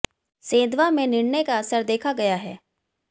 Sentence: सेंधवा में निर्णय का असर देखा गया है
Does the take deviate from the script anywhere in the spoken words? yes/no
no